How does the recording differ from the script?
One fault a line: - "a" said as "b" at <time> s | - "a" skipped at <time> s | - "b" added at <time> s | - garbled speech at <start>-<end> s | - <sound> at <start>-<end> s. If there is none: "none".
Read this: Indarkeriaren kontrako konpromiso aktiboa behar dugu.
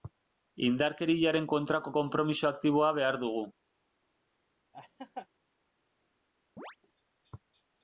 - laugh at 4.7-5.3 s
- chirp at 6.6-6.8 s